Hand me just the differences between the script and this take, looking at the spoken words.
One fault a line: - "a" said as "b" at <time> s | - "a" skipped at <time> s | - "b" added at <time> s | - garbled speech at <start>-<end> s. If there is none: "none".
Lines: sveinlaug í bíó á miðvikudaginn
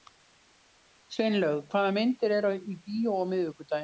- "hvaða myndir eru" added at 1.7 s